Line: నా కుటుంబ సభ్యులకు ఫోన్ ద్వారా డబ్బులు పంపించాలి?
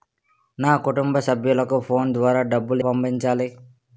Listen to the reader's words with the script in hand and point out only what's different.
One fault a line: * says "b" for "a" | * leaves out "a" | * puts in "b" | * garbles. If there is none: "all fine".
all fine